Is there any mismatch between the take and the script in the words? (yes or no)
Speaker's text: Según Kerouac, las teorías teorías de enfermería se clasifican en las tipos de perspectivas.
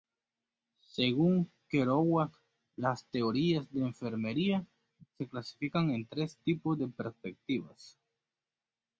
yes